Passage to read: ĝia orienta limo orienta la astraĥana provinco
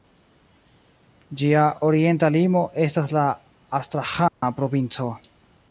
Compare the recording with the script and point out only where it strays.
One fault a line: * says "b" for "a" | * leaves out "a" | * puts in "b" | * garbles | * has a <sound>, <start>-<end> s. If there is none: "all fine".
* says "estas" for "orienta"
* has a dropout, 4.3-4.4 s